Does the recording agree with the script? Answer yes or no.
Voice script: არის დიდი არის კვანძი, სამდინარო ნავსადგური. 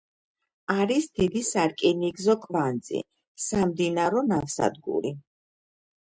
no